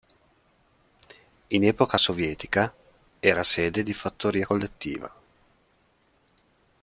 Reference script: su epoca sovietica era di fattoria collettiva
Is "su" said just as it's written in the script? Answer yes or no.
no